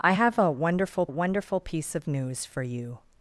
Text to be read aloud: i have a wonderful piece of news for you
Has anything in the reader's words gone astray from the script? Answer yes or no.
yes